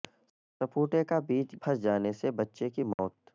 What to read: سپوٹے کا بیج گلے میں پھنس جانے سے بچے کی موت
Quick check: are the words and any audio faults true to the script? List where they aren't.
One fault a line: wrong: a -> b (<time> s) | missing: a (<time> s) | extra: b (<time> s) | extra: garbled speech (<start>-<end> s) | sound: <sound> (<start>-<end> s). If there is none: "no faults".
missing: گلے میں (1.6 s)
sound: dropout (2.9-3.0 s)